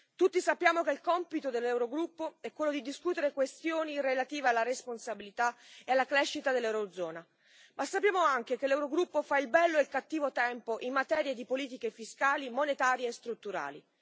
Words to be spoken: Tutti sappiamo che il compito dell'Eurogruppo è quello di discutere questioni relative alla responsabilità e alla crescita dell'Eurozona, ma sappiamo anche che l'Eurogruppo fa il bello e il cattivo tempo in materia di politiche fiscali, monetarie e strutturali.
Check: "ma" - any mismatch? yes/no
no